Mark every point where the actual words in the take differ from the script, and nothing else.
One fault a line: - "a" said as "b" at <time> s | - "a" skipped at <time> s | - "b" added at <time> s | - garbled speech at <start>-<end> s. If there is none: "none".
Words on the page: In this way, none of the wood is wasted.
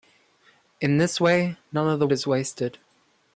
- "wood" skipped at 2.1 s